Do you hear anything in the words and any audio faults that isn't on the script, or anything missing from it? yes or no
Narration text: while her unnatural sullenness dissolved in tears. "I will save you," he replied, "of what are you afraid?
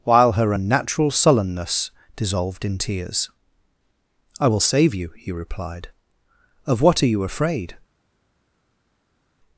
no